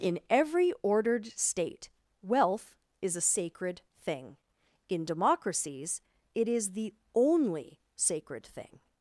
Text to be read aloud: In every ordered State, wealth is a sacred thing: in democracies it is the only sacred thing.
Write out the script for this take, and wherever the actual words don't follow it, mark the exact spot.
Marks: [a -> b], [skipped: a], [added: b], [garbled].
In every ordered State, wealth is a sacred thing: in democracies it is the only sacred thing.